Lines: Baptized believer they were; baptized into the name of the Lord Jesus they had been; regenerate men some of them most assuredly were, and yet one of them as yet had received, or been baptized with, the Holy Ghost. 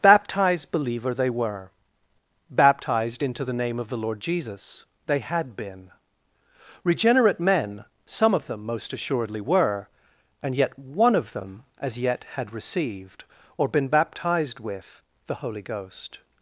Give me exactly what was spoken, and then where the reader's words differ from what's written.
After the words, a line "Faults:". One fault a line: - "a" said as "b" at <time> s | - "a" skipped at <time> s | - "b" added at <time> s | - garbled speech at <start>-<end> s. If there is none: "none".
Baptized believer they were; baptized into the name of the Lord Jesus they had been; regenerate men some of them most assuredly were, and yet one of them as yet had received, or been baptized with, the Holy Ghost.
Faults:
none